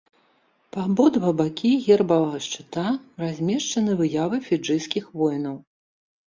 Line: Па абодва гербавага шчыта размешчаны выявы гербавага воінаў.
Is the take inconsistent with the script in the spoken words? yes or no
yes